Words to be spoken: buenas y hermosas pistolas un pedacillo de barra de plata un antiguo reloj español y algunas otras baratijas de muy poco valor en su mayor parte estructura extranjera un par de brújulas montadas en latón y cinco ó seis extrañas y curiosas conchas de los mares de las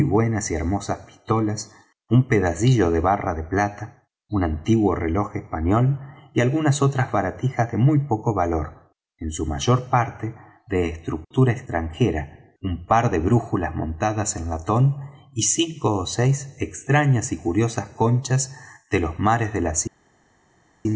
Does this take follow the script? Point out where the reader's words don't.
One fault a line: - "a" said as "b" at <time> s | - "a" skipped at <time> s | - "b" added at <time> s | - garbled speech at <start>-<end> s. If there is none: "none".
- "de" added at 10.7 s